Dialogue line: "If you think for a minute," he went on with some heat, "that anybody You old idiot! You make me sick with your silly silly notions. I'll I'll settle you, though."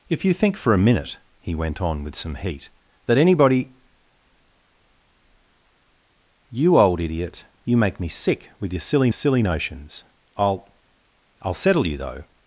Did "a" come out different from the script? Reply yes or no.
no